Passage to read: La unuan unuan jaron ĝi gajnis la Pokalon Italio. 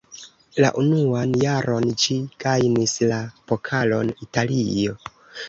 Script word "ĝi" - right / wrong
right